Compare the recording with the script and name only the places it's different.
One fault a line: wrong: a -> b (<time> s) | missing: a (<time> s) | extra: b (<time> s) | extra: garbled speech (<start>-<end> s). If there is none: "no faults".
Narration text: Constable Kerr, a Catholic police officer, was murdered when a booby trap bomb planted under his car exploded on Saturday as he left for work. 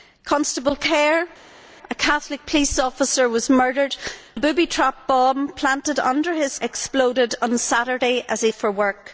missing: when (4.0 s)
missing: car (6.6 s)
missing: left (8.5 s)